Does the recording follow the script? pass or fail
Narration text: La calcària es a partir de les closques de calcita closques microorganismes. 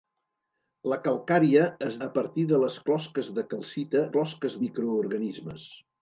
pass